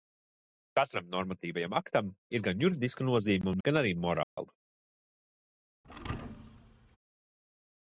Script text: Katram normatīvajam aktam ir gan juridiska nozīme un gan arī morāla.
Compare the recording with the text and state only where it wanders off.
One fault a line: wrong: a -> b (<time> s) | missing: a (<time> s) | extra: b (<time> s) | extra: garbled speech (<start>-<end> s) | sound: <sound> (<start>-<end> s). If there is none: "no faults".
sound: dropout (4.2-4.4 s)
sound: thud (5.8-7.0 s)